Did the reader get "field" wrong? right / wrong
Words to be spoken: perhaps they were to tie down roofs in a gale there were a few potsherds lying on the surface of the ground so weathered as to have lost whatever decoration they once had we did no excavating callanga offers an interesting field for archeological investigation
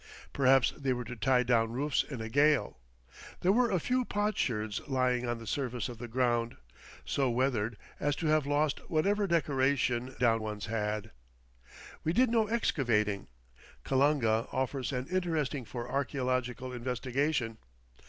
wrong